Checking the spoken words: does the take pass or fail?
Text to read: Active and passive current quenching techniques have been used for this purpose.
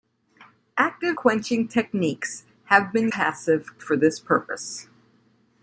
fail